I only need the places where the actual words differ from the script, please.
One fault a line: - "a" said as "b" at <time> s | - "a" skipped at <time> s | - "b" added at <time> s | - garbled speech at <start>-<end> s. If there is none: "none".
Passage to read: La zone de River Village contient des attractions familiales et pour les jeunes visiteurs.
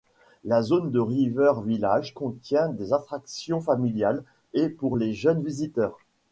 none